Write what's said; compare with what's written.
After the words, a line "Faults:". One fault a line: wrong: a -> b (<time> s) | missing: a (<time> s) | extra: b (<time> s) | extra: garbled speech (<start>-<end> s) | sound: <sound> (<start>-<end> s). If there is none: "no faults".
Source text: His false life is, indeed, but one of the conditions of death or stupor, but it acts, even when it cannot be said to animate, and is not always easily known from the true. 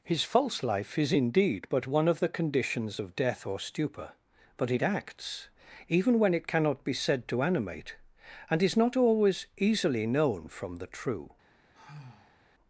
His false life is, indeed, but one of the conditions of death or stupor, but it acts, even when it cannot be said to animate, and is not always easily known from the true.
Faults:
sound: sigh (11.7-12.4 s)